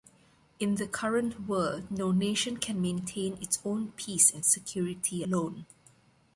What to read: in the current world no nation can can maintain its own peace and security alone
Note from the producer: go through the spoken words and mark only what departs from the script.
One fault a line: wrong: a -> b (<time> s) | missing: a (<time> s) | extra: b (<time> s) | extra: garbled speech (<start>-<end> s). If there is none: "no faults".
missing: can (2.8 s)